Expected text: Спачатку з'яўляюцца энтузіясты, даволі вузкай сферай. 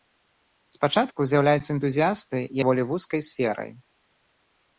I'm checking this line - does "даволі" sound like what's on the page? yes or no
yes